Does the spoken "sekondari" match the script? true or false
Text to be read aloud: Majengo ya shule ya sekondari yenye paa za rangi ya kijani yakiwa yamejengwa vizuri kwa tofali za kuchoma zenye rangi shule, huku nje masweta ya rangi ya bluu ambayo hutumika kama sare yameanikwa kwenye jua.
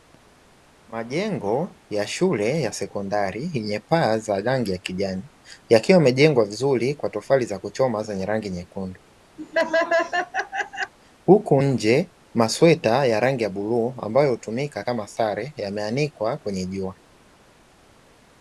true